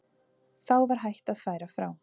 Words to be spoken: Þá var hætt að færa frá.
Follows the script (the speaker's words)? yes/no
yes